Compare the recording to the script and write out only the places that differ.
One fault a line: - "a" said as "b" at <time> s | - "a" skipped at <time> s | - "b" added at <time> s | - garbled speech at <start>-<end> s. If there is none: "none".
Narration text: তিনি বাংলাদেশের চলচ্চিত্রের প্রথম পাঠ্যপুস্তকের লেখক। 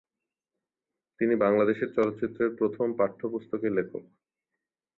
none